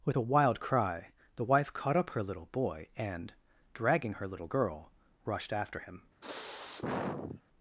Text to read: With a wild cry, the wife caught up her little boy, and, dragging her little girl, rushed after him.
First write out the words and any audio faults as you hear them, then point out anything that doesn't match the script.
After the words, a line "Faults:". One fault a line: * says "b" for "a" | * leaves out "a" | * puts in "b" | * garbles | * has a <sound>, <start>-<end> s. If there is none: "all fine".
With a wild cry, the wife caught up her little boy, and, dragging her little girl, rushed after him.
Faults:
* has a sniff, 6.2-7.4 s